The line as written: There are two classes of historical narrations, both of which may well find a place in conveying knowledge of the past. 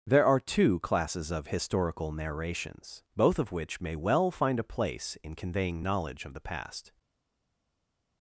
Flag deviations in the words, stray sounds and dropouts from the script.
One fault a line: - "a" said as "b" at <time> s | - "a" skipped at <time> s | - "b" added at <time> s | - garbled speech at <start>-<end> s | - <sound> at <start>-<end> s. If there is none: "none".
none